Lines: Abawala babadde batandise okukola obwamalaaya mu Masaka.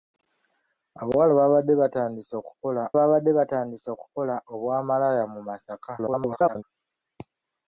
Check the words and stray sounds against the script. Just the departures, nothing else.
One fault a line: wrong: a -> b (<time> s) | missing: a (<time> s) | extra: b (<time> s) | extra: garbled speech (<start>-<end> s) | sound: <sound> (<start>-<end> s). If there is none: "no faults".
extra: babadde batandise okukola (3.0 s)
extra: garbled speech (6.0-6.6 s)